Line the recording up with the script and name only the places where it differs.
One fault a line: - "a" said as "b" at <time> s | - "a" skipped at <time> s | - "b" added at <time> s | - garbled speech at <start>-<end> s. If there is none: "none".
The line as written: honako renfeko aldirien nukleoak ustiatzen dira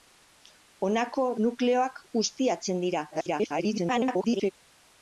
- "renfeko aldirien" skipped at 1.2 s
- garbled speech at 3.1-4.5 s